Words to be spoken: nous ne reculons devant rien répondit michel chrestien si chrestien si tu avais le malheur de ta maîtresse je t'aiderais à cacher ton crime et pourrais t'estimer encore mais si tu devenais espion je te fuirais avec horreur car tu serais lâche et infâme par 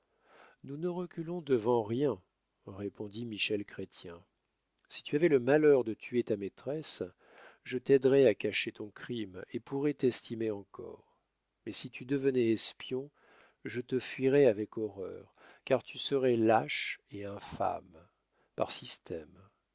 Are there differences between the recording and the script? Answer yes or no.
yes